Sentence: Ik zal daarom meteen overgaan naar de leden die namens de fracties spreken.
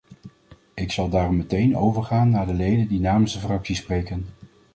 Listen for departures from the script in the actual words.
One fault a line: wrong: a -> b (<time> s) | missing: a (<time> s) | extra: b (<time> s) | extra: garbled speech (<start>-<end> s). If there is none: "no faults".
no faults